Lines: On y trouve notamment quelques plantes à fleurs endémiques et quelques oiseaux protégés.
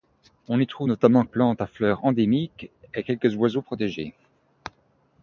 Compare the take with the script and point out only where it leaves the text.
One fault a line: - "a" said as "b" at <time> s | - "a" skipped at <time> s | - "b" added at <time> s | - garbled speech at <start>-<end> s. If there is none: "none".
- "quelques" skipped at 1.2 s